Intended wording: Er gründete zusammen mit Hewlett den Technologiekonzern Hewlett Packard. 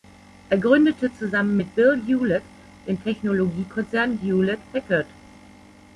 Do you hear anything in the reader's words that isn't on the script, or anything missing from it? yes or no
yes